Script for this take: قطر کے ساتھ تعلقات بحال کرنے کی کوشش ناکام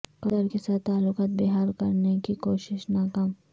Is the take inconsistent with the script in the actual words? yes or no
no